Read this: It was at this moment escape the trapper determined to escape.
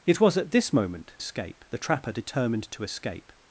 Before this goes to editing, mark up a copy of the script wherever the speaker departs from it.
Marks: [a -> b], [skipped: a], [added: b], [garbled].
It was at this moment escape the trapper determined to escape.